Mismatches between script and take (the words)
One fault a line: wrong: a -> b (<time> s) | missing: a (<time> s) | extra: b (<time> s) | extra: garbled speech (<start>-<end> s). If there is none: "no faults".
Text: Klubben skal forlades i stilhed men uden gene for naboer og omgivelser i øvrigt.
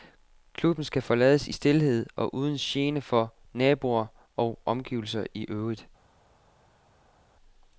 wrong: men -> og (2.1 s)